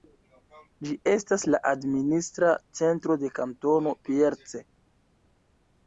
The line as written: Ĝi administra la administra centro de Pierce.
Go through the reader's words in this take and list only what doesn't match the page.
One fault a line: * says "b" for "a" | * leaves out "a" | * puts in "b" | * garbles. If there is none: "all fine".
* says "estas" for "administra"
* puts in "Kantono"